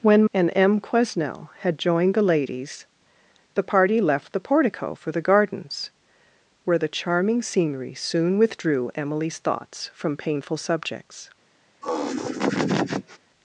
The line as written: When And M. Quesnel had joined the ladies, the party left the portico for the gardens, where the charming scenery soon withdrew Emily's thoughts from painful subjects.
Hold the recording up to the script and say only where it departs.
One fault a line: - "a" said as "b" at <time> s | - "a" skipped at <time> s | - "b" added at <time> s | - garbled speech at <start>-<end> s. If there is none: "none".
none